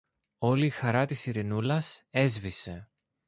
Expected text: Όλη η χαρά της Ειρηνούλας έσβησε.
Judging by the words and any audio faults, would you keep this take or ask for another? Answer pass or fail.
pass